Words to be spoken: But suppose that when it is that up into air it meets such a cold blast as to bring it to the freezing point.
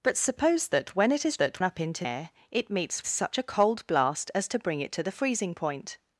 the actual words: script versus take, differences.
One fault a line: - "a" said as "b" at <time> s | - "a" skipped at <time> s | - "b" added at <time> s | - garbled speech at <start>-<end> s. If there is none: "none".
none